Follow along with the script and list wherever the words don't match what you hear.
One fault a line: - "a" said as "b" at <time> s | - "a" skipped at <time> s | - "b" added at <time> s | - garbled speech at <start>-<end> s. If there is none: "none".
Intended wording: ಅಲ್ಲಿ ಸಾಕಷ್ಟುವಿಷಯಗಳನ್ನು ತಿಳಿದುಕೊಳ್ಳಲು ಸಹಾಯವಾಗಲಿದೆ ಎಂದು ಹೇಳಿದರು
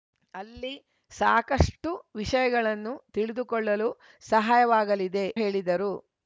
- "ಎಂದು" skipped at 5.3 s